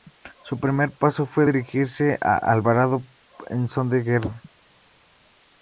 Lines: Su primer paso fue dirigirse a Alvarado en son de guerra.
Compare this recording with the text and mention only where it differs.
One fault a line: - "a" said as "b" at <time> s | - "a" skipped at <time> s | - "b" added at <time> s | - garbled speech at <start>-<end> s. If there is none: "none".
none